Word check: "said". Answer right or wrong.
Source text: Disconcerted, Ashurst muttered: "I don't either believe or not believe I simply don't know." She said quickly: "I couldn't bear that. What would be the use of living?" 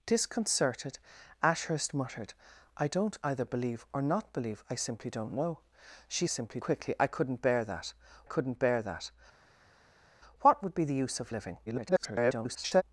wrong